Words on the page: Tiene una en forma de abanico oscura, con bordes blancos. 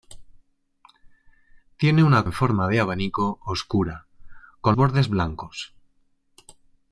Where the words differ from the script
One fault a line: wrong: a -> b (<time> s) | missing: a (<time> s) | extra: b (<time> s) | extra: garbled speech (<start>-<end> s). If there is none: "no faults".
no faults